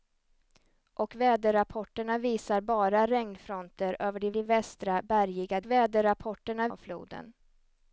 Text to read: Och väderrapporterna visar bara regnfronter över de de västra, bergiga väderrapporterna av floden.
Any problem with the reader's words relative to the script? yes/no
no